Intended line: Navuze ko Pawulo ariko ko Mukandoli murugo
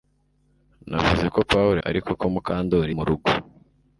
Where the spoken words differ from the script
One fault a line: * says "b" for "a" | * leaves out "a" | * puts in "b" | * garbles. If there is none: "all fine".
all fine